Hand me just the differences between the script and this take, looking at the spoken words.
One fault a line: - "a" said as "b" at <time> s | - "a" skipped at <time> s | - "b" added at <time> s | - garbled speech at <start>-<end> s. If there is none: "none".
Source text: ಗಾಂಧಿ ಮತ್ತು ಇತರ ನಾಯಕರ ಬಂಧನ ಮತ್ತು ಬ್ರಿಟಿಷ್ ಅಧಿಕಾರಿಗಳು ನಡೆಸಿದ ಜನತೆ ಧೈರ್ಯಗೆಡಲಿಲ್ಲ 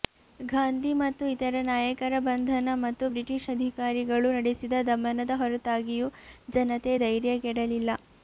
- "ದಮನದ ಹೊರತಾಗಿಯೂ" added at 4.9 s